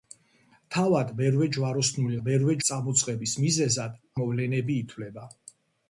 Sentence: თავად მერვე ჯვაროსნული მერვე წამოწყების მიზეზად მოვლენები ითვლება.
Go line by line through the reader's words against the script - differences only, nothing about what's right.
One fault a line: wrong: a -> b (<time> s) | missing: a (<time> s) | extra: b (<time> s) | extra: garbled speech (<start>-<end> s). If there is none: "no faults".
no faults